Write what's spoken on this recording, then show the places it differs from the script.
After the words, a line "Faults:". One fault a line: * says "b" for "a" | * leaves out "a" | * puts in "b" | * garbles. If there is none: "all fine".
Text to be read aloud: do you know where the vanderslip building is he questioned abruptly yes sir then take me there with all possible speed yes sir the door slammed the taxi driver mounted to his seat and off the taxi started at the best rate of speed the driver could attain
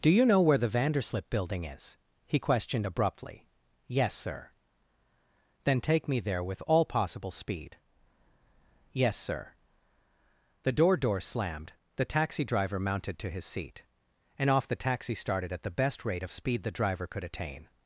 do you know where the vanderslip building is he questioned abruptly yes sir then take me there with all possible speed yes sir the door door slammed the taxi driver mounted to his seat and off the taxi started at the best rate of speed the driver could attain
Faults:
* puts in "door"